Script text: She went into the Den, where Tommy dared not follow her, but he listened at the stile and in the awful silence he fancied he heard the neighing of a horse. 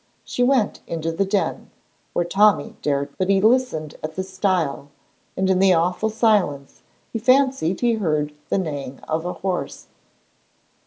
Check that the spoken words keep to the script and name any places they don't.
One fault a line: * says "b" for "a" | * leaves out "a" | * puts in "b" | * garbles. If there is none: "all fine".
* leaves out "not follow her"